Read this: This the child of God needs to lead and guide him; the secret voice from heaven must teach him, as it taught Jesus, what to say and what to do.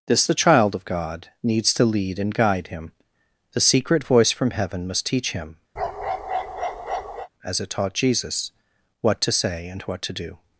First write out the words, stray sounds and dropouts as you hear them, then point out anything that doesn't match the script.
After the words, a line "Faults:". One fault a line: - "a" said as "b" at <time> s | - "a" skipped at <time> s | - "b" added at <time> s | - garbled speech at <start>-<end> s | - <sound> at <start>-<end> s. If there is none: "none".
This the child of God needs to lead and guide him; the secret voice from heaven must teach him, as it taught Jesus, what to say and what to do.
Faults:
- bark at 5.8-7.3 s